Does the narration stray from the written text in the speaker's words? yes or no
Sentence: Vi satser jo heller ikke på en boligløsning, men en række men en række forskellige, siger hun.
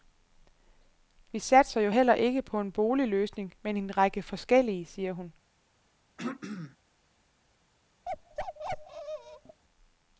yes